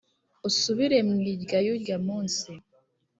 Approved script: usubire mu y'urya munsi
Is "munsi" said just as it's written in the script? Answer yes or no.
yes